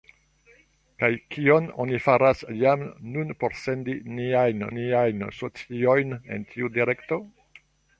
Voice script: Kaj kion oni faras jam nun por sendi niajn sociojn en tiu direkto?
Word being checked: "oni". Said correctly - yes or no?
yes